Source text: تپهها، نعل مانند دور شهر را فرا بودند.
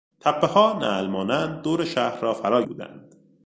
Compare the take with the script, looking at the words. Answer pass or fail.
pass